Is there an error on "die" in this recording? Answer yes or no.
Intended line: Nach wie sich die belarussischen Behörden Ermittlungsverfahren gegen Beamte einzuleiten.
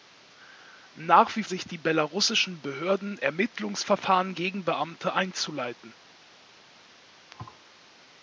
no